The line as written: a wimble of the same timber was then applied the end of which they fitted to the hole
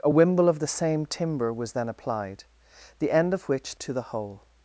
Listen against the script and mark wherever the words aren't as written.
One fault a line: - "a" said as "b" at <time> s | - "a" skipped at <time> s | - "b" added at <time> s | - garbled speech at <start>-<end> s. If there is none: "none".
- "they fitted" skipped at 3.7 s